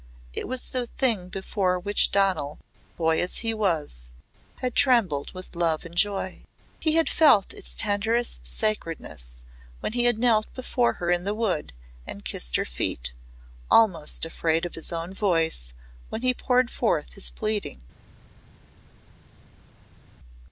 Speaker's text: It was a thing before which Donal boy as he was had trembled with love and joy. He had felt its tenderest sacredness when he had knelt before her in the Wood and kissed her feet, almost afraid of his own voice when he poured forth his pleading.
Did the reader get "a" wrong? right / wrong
wrong